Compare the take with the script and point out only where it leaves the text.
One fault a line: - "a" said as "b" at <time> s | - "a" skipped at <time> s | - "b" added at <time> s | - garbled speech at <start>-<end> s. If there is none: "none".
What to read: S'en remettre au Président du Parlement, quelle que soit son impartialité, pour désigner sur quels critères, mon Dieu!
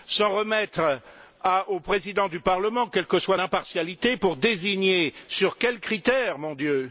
- "son" skipped at 3.4 s